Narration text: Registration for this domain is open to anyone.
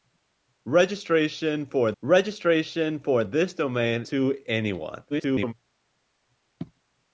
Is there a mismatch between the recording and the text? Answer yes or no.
yes